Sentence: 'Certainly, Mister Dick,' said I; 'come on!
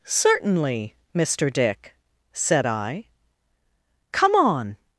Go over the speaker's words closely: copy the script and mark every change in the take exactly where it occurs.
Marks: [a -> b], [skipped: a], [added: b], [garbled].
'Certainly, Mister Dick,' said I; 'come on!